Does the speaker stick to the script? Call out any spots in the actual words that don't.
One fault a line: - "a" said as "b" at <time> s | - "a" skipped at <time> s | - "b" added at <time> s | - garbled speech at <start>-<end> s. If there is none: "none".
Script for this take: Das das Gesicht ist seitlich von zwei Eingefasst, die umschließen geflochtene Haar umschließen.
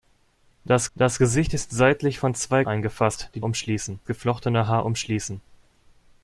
none